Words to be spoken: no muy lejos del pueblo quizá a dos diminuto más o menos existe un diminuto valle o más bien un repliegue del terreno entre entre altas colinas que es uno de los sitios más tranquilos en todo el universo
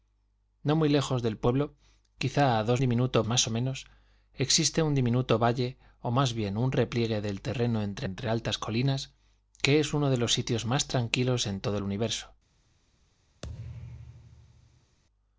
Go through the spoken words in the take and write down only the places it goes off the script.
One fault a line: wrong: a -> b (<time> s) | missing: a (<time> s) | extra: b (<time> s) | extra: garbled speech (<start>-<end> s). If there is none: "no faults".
no faults